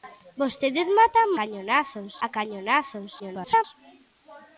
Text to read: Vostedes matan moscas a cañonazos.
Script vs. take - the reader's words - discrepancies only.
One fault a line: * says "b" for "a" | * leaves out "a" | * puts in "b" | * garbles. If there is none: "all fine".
* says "cañonazos" for "moscas"
* garbles